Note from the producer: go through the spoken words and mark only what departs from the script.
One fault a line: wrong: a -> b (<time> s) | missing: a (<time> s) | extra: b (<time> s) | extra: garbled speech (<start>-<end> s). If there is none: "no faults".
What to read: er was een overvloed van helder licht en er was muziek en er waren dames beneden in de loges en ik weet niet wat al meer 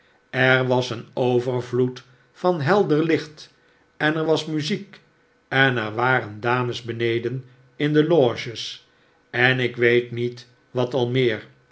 no faults